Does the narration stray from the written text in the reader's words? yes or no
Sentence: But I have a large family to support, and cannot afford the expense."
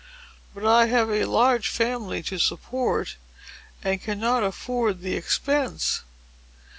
no